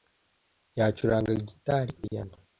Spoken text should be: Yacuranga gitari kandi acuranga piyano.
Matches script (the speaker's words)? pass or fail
fail